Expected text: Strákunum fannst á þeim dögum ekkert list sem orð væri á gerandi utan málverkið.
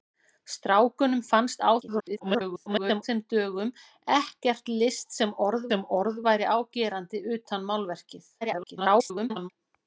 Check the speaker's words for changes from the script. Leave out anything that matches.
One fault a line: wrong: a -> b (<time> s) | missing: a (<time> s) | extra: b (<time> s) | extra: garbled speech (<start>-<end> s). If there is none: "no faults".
extra: garbled speech (1.8-3.0 s)
extra: sem orð (5.7 s)
extra: garbled speech (8.4-9.5 s)